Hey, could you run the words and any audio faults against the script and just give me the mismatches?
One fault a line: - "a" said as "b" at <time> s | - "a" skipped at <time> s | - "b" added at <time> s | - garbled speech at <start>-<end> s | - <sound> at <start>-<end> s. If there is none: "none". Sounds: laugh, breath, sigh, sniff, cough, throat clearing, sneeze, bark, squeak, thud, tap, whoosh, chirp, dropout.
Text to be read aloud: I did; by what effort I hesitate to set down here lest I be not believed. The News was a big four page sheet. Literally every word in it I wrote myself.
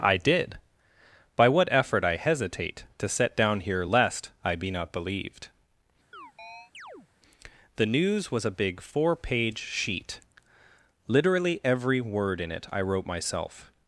- chirp at 6.1-7.1 s